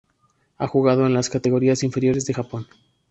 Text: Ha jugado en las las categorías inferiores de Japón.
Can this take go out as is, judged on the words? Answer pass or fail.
fail